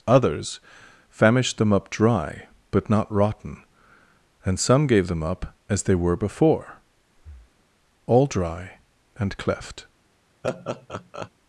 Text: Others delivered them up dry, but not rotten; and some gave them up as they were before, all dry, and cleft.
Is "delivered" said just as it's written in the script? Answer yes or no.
no